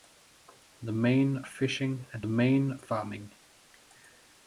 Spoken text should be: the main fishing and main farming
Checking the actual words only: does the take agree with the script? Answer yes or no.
yes